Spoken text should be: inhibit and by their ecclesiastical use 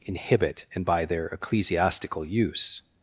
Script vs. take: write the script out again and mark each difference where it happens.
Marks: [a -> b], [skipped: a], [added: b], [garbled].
inhibit and by their ecclesiastical use